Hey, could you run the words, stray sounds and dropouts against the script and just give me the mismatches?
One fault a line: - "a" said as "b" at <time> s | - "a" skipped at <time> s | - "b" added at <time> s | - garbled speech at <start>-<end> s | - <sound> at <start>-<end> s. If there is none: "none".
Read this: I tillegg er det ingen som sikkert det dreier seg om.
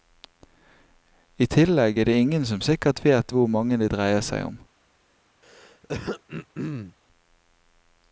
- "vet hvor mange" added at 3.0 s
- throat clearing at 5.4-6.9 s